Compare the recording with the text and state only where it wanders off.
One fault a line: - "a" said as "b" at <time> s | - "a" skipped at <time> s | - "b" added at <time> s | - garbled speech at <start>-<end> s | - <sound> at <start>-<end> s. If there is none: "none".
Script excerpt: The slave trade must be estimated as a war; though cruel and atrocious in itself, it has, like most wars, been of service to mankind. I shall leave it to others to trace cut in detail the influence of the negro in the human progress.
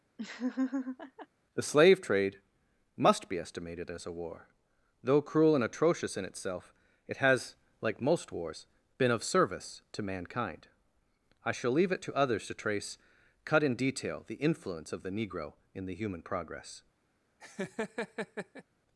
- laugh at 0.2-1.3 s
- laugh at 17.4-18.6 s